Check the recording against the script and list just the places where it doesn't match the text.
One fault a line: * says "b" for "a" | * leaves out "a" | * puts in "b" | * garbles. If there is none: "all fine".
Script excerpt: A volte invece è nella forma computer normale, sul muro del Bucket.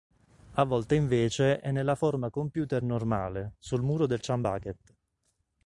* puts in "Chum"